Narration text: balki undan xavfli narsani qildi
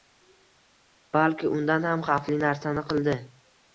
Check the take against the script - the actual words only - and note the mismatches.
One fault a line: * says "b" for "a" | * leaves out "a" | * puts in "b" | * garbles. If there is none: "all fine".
* puts in "ham"